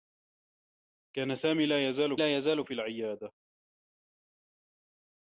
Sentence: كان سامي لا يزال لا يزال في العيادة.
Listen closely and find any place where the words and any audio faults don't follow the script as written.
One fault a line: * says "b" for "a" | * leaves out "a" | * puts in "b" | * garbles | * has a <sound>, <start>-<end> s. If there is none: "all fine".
all fine